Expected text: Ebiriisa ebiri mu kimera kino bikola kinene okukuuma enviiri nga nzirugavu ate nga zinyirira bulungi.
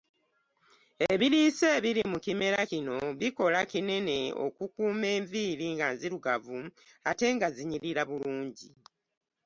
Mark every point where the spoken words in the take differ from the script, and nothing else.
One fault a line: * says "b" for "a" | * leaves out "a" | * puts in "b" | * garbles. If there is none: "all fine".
all fine